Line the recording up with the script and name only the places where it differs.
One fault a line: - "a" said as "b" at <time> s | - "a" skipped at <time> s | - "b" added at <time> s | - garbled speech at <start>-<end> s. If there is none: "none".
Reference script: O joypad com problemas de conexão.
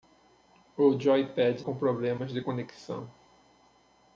none